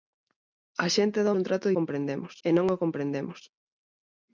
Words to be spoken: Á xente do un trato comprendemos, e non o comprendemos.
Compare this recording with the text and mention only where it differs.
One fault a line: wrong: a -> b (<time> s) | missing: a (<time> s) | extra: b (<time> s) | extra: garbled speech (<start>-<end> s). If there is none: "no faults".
no faults